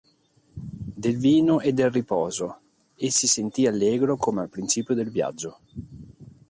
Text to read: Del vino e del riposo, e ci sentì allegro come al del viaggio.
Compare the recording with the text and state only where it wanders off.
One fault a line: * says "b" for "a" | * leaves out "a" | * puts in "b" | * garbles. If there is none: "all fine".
* says "si" for "ci"
* puts in "principio"